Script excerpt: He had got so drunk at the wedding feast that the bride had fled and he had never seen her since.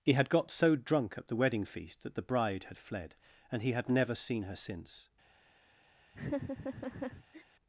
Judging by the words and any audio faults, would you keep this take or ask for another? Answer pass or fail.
fail